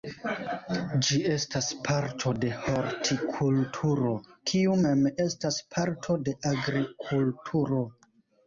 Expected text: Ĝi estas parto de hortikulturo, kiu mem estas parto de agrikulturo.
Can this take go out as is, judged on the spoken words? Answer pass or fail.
pass